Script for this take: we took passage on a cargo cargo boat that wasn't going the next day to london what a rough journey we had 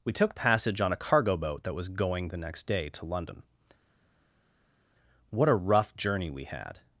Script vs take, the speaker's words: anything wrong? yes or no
yes